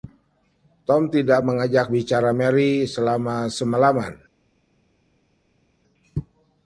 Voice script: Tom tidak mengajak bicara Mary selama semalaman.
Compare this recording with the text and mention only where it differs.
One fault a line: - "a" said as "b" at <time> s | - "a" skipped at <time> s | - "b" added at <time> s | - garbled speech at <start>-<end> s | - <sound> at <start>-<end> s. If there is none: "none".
none